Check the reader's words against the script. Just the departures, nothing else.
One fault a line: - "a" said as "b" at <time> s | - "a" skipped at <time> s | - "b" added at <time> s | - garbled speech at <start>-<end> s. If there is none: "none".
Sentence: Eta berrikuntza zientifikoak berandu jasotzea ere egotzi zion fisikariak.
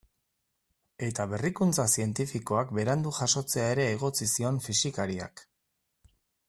none